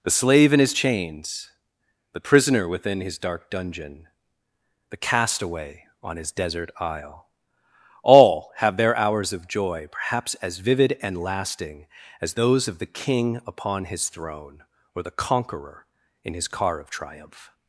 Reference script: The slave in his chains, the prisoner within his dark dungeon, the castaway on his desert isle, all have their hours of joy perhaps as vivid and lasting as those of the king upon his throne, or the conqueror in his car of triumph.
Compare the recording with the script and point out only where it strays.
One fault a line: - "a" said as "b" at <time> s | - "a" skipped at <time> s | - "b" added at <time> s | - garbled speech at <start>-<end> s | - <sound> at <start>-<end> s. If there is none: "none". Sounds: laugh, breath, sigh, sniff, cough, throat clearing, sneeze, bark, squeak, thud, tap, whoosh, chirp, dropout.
none